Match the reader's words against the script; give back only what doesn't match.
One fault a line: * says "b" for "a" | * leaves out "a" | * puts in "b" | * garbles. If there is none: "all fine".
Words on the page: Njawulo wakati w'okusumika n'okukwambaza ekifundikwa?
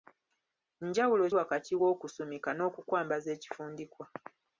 all fine